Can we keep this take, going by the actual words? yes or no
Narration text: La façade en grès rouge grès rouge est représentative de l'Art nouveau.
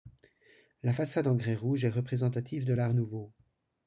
no